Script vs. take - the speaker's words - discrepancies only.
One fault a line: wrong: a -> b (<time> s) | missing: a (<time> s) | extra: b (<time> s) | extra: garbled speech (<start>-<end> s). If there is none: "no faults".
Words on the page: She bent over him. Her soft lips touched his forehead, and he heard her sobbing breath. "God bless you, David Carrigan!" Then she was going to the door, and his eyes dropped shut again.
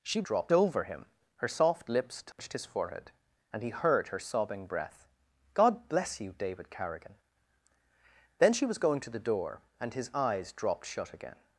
wrong: bent -> dropped (0.2 s)